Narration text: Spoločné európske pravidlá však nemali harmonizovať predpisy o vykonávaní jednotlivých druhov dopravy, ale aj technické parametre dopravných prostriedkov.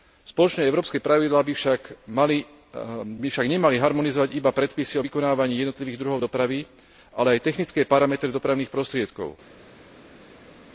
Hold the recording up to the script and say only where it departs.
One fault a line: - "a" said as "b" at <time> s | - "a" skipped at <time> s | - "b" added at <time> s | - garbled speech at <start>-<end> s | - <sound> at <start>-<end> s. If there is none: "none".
- "by" added at 1.4 s
- "iba" added at 4.3 s